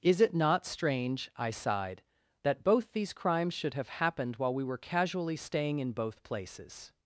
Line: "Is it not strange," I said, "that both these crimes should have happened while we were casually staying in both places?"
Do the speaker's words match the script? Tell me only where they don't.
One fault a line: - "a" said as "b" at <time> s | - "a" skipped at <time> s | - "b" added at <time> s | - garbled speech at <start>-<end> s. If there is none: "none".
- "said" said as "sighed" at 1.5 s